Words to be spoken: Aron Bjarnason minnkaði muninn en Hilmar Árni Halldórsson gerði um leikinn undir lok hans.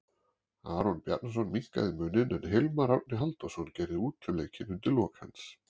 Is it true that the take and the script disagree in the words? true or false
true